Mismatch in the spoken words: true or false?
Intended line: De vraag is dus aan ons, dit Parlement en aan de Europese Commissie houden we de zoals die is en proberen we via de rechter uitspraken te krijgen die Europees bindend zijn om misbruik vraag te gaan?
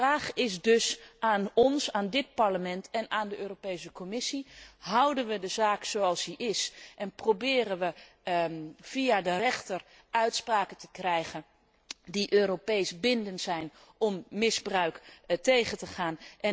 true